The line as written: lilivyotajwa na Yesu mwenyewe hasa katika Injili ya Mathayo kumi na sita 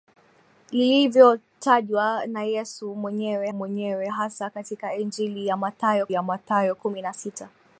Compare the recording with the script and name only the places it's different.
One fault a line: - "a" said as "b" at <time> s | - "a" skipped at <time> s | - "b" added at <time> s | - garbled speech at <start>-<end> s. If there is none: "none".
- "mwenyewe" added at 3.5 s
- "ya Mathayo" added at 6.1 s